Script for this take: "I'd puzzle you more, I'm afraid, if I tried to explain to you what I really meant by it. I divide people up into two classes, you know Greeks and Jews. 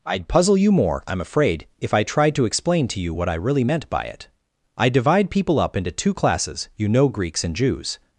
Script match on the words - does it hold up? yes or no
yes